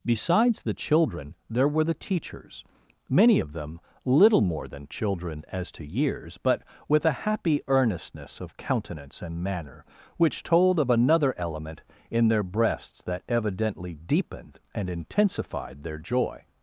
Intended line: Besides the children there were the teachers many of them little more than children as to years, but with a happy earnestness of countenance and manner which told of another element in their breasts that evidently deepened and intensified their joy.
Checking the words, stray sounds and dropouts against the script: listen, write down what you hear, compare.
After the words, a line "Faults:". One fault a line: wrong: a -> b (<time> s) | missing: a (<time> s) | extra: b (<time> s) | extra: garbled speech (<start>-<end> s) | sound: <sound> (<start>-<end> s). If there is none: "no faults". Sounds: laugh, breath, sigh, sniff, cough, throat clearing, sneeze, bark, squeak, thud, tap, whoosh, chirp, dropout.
Besides the children there were the teachers many of them little more than children as to years, but with a happy earnestness of countenance and manner which told of another element in their breasts that evidently deepened and intensified their joy.
Faults:
no faults